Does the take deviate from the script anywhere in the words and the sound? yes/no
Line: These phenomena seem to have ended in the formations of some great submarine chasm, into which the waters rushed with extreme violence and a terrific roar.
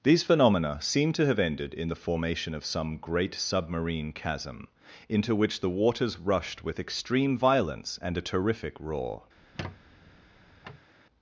yes